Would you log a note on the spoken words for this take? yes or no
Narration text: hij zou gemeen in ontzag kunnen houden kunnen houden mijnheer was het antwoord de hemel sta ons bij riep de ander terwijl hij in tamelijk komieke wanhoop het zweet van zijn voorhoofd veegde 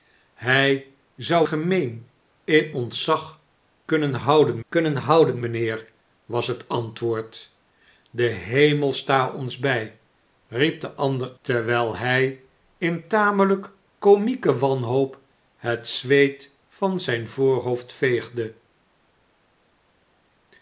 no